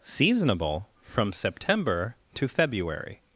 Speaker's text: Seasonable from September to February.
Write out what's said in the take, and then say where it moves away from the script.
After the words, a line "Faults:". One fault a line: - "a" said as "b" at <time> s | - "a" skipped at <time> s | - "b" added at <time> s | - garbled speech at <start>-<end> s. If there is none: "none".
Seasonable from September to February.
Faults:
none